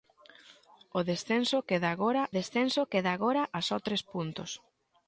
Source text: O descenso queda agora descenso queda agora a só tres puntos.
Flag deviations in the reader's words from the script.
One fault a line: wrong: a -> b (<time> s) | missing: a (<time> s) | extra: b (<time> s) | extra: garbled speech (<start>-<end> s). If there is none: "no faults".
no faults